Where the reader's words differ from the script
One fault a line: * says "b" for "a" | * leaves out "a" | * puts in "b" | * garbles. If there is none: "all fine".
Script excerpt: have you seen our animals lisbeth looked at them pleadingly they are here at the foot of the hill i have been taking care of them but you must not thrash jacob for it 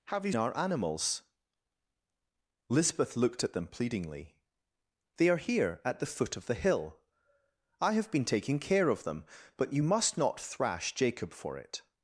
* leaves out "seen"